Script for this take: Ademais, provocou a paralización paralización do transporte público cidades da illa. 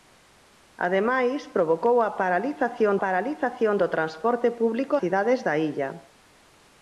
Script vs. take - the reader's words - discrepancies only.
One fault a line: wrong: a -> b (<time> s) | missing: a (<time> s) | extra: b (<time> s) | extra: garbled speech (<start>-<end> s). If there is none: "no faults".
no faults